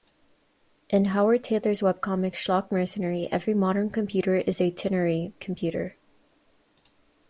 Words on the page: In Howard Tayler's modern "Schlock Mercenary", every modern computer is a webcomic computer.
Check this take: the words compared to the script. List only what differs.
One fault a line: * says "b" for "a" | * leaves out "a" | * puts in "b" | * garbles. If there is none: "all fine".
* says "webcomic" for "modern"
* says "ternary" for "webcomic"